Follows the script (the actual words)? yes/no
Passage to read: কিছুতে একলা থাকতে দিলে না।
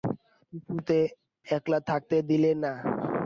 yes